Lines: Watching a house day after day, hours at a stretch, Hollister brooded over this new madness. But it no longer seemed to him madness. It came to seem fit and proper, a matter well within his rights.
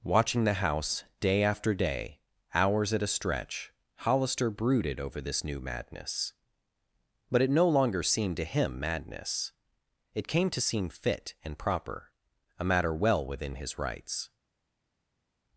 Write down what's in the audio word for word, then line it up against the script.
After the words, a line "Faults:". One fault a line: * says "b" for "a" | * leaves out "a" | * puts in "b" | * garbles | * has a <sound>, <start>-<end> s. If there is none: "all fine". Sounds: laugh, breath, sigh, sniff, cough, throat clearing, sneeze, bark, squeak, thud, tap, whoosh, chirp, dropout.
Watching the house day after day, hours at a stretch, Hollister brooded over this new madness. But it no longer seemed to him madness. It came to seem fit and proper, a matter well within his rights.
Faults:
* says "the" for "a"